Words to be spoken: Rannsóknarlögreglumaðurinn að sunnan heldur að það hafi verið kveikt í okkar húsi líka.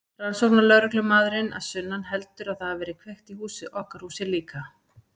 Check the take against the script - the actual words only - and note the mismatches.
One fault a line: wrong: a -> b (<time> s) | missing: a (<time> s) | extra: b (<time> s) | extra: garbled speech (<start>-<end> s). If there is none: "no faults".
no faults